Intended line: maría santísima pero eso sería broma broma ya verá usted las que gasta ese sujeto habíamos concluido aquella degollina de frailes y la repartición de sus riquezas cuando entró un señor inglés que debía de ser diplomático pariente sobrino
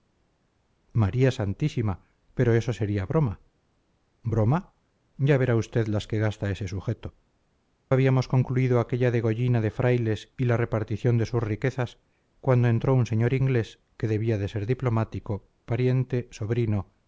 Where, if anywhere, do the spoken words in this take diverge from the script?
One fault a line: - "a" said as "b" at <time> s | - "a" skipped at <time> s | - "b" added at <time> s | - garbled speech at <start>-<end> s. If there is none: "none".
none